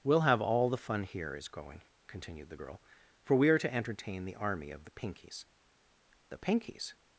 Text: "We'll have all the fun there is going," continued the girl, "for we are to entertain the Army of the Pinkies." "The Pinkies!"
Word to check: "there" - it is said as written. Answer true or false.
false